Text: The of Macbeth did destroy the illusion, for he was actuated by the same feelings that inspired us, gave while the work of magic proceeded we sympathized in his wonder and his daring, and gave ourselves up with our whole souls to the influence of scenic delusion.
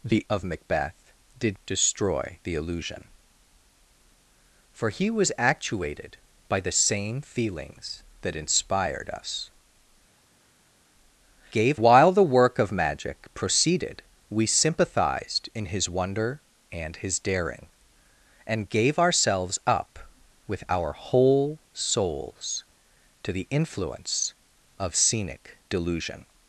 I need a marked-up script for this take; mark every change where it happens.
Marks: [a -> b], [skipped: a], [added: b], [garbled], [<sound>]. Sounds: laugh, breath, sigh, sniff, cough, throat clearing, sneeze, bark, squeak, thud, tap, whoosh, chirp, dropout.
The of Macbeth did destroy the illusion, for he was actuated by the same feelings that inspired us, gave while the work of magic proceeded we sympathized in his wonder and his daring, and gave ourselves up with our whole souls to the influence of scenic delusion.